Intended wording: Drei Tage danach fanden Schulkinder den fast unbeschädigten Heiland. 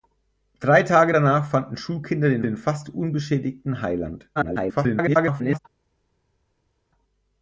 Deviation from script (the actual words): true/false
true